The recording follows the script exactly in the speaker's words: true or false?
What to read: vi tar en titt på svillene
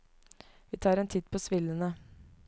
true